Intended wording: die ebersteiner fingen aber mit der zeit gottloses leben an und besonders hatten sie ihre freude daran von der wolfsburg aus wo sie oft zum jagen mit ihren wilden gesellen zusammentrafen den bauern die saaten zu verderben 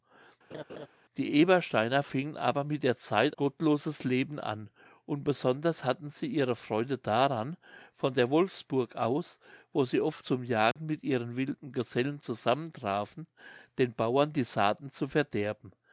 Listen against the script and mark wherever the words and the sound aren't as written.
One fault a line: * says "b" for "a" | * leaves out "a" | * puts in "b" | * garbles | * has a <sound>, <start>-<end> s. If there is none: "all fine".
* has a laugh, 0.5-0.9 s
* has a dropout, 10.7-10.8 s